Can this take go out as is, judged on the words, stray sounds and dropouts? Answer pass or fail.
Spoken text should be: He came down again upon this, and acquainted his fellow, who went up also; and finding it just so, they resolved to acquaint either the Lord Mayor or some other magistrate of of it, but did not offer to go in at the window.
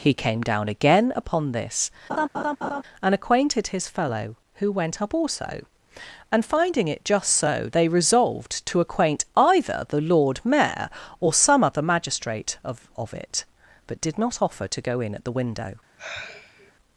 fail